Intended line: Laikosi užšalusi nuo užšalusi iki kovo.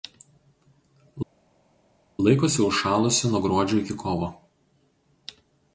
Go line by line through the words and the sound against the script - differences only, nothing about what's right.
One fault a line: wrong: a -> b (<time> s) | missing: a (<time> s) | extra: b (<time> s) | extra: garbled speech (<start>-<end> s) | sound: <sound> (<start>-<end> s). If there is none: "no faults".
wrong: užšalusi -> gruodžio (3.4 s)